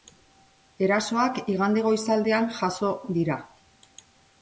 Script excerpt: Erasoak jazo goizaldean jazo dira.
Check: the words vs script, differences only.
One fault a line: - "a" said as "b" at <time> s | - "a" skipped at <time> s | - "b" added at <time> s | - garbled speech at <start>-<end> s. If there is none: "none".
- "jazo" said as "igande" at 1.6 s